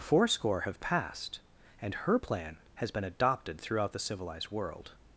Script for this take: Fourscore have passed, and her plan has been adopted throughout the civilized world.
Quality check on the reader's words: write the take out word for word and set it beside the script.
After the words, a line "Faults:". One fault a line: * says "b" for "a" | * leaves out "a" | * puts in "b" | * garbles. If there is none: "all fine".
Fourscore have passed, and her plan has been adopted throughout the civilized world.
Faults:
all fine